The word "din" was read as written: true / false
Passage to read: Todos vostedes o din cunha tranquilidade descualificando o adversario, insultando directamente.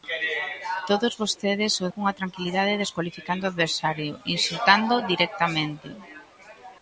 false